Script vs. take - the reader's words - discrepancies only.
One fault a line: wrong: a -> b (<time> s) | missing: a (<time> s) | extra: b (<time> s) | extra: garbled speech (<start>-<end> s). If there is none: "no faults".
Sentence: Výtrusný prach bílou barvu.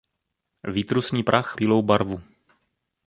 no faults